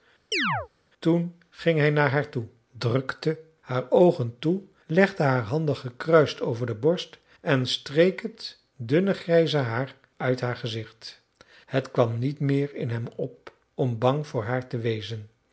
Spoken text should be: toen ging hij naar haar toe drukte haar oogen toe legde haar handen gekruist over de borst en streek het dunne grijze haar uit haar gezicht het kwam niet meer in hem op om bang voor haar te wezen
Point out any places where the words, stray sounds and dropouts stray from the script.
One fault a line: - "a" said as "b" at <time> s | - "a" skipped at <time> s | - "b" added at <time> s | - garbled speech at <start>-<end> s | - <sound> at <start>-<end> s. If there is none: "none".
- chirp at 0.3-0.7 s